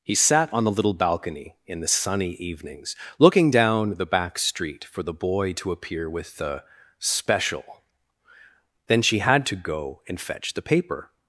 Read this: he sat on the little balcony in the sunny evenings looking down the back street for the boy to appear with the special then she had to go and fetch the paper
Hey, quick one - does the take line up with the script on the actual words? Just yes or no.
yes